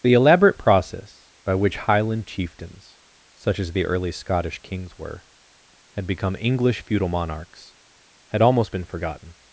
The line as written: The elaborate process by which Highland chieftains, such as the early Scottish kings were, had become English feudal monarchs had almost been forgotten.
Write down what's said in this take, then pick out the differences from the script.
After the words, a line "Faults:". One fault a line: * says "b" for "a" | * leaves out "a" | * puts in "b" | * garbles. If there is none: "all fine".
The elaborate process by which Highland chieftains, such as the early Scottish kings were, had become English feudal monarchs had almost been forgotten.
Faults:
all fine